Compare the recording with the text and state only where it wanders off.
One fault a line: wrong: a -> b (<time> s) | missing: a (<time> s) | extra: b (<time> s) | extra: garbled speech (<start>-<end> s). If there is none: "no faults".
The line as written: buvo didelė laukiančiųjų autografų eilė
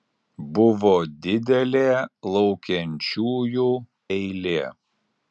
missing: autografų (3.7 s)